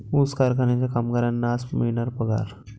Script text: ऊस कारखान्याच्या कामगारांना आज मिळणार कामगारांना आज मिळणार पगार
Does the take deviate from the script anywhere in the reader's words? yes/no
yes